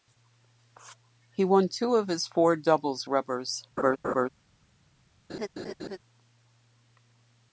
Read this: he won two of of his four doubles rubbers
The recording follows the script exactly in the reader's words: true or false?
false